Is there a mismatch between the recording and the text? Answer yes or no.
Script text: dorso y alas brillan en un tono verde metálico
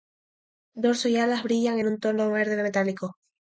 no